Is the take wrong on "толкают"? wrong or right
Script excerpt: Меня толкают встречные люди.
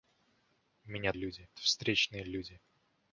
wrong